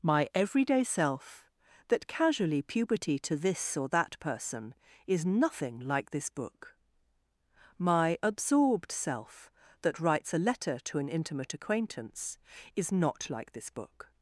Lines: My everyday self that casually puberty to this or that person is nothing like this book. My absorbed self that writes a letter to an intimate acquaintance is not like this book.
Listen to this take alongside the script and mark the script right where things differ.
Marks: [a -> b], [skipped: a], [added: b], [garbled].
My everyday self that casually puberty to this or that person is nothing like this book. My absorbed self that writes a letter to an intimate acquaintance is not like this book.